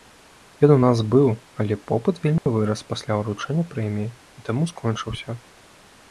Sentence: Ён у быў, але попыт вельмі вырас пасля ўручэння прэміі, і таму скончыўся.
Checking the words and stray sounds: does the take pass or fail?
fail